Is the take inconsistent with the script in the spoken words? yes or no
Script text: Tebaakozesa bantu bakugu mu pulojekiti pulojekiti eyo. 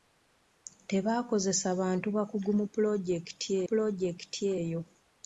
no